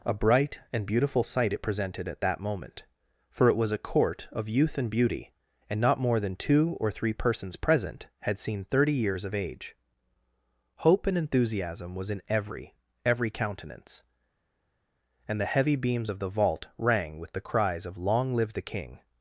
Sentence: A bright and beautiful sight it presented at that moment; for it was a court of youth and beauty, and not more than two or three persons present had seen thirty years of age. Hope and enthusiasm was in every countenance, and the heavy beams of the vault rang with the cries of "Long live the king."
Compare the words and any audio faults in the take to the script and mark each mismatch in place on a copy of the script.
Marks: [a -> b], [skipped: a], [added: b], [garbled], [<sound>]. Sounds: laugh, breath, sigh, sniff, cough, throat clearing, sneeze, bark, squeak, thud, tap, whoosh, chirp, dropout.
A bright and beautiful sight it presented at that moment; for it was a court of youth and beauty, and not more than two or three persons present had seen thirty years of age. Hope and enthusiasm was in every [added: every] countenance, and the heavy beams of the vault rang with the cries of "Long live the king."